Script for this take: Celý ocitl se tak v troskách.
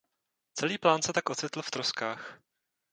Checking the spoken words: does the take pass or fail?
fail